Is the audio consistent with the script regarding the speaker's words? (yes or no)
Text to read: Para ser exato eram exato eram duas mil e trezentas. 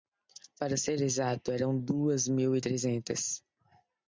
no